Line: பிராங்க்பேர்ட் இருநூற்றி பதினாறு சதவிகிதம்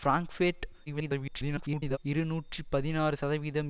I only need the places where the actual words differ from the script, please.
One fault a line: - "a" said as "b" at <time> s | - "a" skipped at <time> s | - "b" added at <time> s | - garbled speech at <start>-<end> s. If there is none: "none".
- garbled speech at 0.9-2.0 s